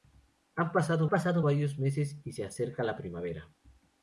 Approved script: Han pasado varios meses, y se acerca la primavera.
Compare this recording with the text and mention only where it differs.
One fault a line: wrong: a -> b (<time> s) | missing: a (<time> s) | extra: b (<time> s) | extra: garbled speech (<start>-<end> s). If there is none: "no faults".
extra: pasado (1.1 s)